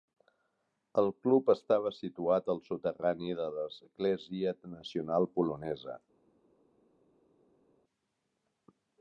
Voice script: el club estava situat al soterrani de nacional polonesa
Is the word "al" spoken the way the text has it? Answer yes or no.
yes